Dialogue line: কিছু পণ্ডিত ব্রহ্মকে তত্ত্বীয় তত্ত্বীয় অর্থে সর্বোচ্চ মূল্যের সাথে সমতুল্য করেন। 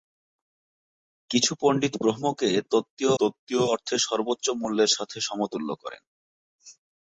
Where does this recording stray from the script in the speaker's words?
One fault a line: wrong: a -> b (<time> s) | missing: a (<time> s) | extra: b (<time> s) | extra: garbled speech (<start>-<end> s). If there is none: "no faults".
no faults